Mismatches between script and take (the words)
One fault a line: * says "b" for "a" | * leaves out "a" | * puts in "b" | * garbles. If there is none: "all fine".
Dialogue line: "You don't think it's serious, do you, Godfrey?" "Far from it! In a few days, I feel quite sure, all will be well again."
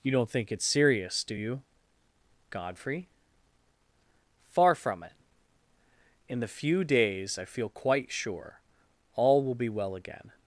* says "the" for "a"